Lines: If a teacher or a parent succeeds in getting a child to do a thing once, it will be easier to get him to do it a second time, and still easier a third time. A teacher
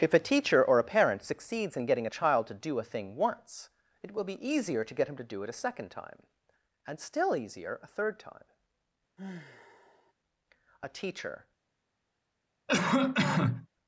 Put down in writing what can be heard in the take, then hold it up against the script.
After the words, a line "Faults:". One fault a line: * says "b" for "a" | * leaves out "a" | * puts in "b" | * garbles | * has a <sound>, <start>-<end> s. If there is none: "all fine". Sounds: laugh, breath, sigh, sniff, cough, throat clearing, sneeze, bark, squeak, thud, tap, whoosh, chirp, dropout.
If a teacher or a parent succeeds in getting a child to do a thing once, it will be easier to get him to do it a second time, and still easier a third time. A teacher
Faults:
* has a sigh, 9.2-10.1 s
* has a cough, 12.7-13.7 s